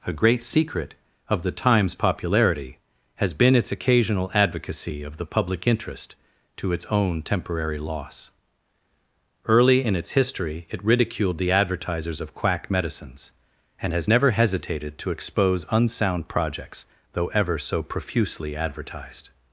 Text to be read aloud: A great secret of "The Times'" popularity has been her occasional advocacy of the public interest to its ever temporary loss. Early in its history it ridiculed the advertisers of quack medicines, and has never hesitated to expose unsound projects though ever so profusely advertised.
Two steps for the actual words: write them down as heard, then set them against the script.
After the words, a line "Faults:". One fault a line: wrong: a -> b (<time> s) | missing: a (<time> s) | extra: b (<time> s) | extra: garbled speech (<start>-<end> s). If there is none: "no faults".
A great secret of "The Times'" popularity has been its occasional advocacy of the public interest to its own temporary loss. Early in its history it ridiculed the advertisers of quack medicines, and has never hesitated to expose unsound projects though ever so profusely advertised.
Faults:
wrong: her -> its (3.6 s)
wrong: ever -> own (6.8 s)